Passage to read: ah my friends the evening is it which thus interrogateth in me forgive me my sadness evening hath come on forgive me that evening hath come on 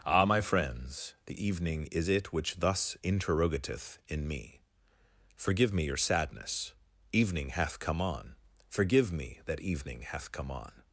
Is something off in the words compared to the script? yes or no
yes